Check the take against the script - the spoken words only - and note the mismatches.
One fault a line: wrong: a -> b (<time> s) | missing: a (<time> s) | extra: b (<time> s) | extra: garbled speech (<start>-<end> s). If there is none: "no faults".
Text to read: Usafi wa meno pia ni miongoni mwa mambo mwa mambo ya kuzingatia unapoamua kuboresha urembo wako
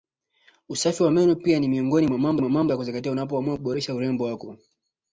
no faults